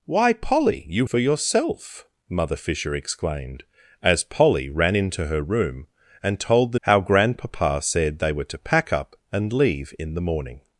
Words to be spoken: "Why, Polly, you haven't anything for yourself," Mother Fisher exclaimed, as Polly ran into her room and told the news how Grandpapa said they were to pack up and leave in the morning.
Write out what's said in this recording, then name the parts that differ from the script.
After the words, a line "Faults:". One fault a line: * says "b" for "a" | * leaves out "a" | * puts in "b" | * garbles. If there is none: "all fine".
"Why, Polly, you for yourself," Mother Fisher exclaimed, as Polly ran into her room and told the how Grandpapa said they were to pack up and leave in the morning.
Faults:
* leaves out "haven't anything"
* leaves out "news"